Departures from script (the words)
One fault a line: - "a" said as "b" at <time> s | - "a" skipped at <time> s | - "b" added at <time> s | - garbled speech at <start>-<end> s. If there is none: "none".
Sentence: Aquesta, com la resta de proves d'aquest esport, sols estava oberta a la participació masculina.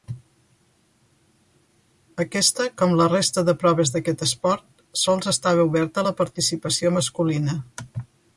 none